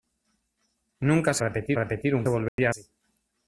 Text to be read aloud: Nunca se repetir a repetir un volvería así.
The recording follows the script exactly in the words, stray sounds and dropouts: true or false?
false